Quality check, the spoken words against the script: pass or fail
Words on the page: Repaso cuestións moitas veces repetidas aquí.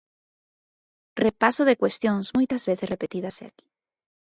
fail